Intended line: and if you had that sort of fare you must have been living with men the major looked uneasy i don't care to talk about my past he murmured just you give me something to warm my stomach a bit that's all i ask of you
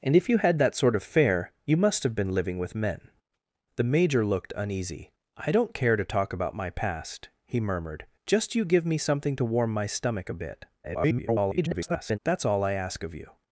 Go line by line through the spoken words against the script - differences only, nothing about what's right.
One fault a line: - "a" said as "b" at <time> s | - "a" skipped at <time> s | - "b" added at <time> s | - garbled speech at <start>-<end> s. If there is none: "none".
- garbled speech at 10.8-12.2 s